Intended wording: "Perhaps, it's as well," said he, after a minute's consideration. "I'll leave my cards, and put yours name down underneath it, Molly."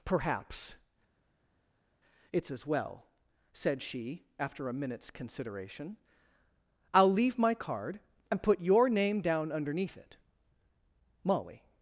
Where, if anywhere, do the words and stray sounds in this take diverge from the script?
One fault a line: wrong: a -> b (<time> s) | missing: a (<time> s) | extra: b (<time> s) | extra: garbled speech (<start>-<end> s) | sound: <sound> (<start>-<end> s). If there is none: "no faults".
wrong: he -> she (3.8 s)
wrong: cards -> card (7.5 s)
wrong: yours -> your (8.6 s)